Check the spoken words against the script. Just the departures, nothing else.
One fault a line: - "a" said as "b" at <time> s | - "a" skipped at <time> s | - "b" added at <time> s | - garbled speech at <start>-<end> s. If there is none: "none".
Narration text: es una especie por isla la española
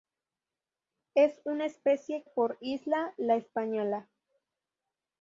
none